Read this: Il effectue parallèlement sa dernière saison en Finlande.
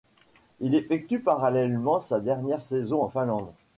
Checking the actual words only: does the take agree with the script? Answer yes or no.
yes